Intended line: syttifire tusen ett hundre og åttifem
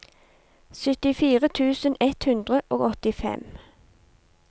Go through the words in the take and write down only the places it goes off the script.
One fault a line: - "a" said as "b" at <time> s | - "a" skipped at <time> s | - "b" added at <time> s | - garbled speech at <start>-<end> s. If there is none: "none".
none